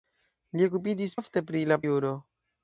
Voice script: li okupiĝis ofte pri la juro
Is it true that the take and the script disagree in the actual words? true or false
false